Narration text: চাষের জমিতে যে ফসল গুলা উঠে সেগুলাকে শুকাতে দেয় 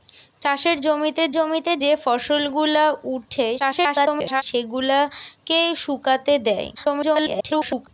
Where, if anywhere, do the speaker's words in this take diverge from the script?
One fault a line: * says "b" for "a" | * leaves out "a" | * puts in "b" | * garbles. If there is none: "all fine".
* puts in "জমিতে"
* garbles
* garbles